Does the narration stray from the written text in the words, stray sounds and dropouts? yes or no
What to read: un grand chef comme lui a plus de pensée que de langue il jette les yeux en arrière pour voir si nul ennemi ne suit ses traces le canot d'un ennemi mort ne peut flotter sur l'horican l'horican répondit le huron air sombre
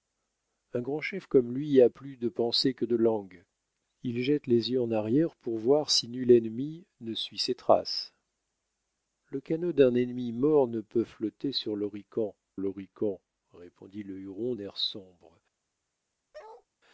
yes